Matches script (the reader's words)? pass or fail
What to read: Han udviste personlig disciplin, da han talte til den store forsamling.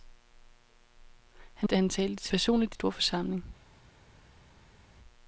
fail